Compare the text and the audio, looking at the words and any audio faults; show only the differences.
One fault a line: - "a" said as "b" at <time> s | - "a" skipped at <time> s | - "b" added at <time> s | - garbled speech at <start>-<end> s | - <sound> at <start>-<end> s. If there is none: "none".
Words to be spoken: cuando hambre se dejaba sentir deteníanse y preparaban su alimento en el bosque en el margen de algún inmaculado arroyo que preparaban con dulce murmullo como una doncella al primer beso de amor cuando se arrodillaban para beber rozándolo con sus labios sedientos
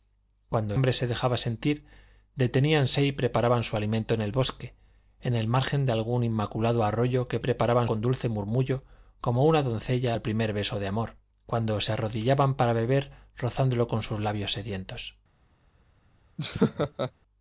- laugh at 16.4-17.1 s